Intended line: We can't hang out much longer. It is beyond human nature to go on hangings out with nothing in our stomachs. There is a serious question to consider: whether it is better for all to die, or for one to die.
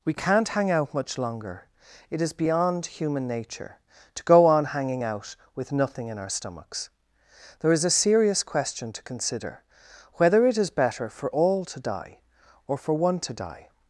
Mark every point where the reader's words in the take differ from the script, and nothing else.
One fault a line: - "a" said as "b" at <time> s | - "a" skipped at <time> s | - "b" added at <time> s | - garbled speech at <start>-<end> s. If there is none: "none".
- "hangings" said as "hanging" at 4.6 s